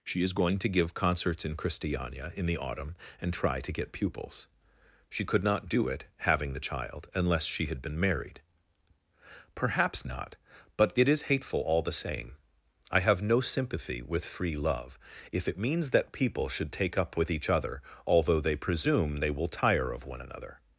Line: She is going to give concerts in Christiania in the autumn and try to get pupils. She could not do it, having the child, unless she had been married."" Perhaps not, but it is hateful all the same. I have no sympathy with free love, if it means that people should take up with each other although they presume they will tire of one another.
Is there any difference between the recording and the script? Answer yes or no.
no